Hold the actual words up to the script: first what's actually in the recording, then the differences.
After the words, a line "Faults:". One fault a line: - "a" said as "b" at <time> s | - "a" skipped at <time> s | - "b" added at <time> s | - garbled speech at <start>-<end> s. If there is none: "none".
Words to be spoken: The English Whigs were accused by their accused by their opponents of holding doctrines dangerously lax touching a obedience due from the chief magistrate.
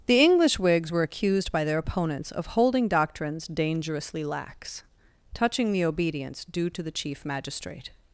The English Whigs were accused by their opponents of holding doctrines dangerously lax touching the obedience due to the chief magistrate.
Faults:
- "accused by their" skipped at 1.8 s
- "a" said as "the" at 5.7 s
- "from" said as "to" at 6.7 s